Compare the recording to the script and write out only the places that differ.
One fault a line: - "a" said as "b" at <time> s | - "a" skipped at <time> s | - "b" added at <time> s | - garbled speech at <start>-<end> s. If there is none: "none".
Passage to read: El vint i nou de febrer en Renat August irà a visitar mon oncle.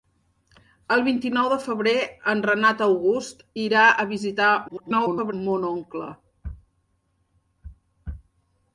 - garbled speech at 4.7-5.3 s